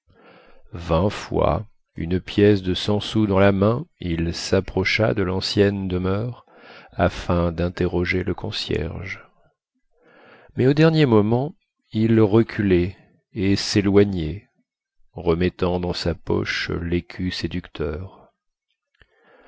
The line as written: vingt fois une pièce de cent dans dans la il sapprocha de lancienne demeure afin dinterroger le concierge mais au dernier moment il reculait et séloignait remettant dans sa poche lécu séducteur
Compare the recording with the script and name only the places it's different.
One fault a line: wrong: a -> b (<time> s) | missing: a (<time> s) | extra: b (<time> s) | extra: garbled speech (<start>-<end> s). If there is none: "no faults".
wrong: dans -> sous (3.0 s)
extra: main (3.5 s)